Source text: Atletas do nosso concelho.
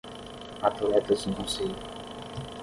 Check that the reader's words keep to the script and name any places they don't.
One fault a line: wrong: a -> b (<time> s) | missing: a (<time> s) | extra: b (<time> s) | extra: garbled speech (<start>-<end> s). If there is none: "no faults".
missing: nosso (1.3 s)